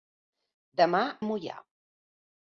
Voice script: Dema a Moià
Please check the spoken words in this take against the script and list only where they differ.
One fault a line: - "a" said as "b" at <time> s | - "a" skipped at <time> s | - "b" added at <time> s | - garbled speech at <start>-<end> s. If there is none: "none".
none